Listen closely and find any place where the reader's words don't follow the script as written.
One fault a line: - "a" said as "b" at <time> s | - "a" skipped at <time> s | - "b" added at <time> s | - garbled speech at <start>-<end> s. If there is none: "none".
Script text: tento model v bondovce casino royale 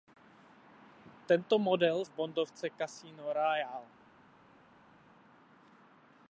none